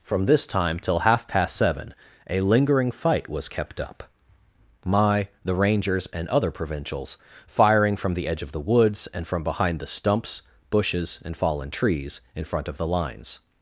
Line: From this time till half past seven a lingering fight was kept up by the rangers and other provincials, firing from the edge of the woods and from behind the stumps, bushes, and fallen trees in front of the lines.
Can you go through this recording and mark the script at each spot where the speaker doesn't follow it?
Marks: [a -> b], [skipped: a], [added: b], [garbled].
From this time till half past seven a lingering fight was kept up [by -> my] the rangers and other provincials, firing from the edge of the woods and from behind the stumps, bushes, and fallen trees in front of the lines.